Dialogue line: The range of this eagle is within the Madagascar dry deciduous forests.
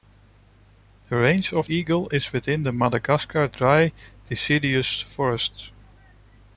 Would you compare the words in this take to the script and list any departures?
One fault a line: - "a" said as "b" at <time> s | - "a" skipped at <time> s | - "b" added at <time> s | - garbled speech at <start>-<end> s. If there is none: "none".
- "this" skipped at 1.7 s